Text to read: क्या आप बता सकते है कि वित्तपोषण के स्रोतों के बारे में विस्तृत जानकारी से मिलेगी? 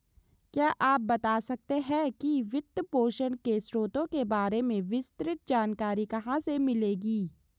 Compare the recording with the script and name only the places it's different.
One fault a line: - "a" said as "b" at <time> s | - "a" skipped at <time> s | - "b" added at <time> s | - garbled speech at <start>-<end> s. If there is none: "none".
- "कहाँ" added at 6.0 s